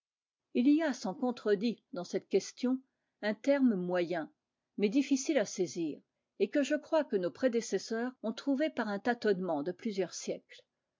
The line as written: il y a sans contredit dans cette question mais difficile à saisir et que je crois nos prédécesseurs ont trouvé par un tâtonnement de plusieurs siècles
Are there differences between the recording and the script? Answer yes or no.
yes